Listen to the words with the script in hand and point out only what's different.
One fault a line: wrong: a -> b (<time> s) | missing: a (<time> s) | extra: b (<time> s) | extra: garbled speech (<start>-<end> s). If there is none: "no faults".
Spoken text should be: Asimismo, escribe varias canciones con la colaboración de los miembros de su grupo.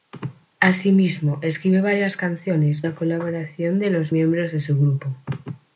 missing: con (2.8 s)